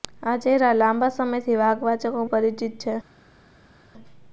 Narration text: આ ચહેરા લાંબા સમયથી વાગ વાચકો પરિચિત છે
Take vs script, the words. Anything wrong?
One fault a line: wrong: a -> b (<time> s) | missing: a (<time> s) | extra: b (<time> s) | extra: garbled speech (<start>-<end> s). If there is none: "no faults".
no faults